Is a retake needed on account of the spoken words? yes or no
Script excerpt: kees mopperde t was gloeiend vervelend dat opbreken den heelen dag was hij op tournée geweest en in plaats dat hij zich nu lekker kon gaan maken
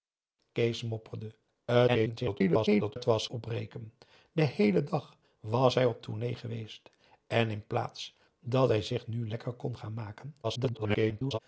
yes